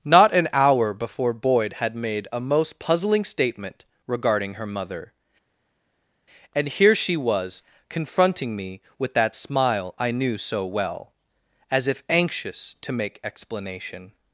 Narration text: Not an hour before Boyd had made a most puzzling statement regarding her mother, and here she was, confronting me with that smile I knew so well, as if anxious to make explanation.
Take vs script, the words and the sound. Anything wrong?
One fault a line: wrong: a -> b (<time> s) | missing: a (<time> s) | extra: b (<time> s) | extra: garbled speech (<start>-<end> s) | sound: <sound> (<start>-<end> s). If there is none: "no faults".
no faults